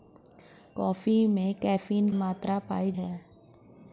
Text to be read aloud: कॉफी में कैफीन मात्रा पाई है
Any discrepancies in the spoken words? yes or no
no